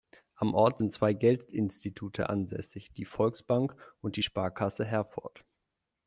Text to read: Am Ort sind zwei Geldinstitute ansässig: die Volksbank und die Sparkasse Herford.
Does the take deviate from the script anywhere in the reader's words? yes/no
no